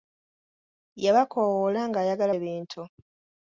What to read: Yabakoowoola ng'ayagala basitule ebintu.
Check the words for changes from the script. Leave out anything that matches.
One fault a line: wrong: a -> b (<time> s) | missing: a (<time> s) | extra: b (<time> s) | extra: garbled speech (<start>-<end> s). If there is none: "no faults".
missing: basitule (2.3 s)